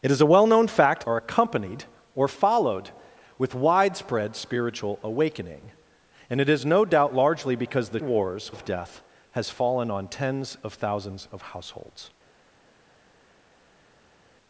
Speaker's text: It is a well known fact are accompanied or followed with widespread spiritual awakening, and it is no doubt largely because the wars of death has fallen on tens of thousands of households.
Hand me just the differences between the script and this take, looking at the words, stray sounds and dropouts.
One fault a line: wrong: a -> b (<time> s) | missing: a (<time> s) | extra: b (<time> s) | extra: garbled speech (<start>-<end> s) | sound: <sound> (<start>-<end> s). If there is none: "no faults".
no faults